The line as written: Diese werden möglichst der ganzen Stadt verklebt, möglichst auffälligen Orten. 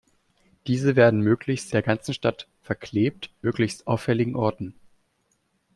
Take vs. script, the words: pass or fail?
pass